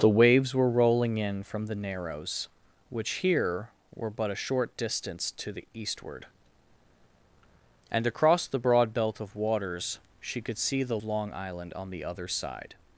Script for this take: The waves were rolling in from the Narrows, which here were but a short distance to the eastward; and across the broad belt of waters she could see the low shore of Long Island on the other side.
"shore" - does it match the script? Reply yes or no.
no